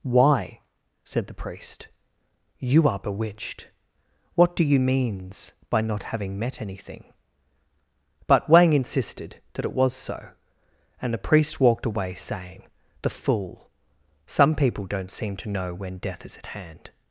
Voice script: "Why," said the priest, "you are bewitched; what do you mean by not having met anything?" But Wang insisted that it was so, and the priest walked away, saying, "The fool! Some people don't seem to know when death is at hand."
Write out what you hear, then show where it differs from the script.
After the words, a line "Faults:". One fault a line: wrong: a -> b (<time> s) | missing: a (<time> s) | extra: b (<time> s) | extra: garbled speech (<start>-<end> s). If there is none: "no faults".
"Why," said the priest, "you are bewitched; what do you means by not having met anything?" But Wang insisted that it was so, and the priest walked away, saying, "The fool! Some people don't seem to know when death is at hand."
Faults:
wrong: mean -> means (4.8 s)